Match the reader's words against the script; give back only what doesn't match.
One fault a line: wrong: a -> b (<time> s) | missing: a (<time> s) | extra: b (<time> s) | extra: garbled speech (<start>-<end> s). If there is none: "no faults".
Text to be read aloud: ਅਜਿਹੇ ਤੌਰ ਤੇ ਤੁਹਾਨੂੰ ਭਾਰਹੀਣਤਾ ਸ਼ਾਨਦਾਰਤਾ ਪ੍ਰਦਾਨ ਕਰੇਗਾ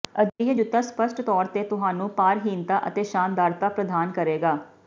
extra: ਜੁੱਤਾ ਸਪੱਸ਼ਟ (0.5 s)
extra: ਅਤੇ (2.9 s)